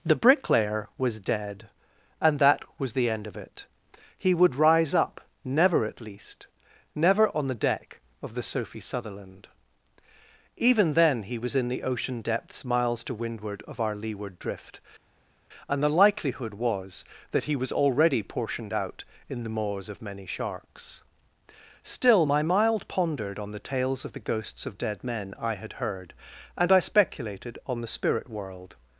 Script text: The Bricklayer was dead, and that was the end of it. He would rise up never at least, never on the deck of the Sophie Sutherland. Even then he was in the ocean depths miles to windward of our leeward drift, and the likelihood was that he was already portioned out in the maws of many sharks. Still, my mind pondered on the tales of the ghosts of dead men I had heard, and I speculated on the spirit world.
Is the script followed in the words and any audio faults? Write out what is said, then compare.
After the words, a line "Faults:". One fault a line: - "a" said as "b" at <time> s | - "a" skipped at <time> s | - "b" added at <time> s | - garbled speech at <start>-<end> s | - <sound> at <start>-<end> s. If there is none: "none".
The Bricklayer was dead, and that was the end of it. He would rise up never at least, never on the deck of the Sophie Sutherland. Even then he was in the ocean depths miles to windward of our leeward drift, and the likelihood was that he was already portioned out in the maws of many sharks. Still, my mild pondered on the tales of the ghosts of dead men I had heard, and I speculated on the spirit world.
Faults:
- "mind" said as "mild" at 22.4 s